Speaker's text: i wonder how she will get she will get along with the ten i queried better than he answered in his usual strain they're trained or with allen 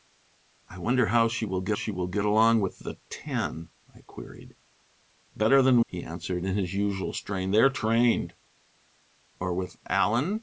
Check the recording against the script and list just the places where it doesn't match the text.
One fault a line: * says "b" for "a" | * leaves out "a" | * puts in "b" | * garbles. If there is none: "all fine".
all fine